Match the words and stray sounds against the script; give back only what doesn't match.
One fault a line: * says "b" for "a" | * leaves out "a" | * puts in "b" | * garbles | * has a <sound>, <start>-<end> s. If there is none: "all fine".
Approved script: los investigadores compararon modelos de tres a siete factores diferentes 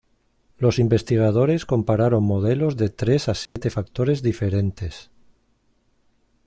* has a dropout, 3.5-3.6 s